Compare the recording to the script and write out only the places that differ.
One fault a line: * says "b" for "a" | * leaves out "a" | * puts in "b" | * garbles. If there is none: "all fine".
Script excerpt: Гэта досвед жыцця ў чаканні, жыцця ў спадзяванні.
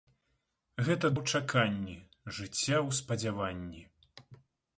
* leaves out "досвед жыцця"